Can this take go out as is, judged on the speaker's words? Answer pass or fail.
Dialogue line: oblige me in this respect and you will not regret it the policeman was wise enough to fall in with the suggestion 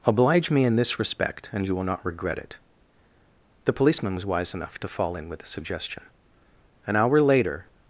fail